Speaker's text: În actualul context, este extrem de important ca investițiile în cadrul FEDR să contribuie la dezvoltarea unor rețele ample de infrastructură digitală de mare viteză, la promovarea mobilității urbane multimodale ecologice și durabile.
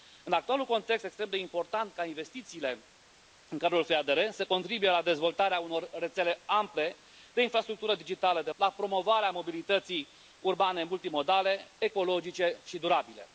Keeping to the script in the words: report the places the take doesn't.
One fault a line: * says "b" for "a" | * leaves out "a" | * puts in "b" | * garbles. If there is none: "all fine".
* leaves out "este"
* leaves out "mare viteză"